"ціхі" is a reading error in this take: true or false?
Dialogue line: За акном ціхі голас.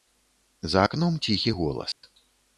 false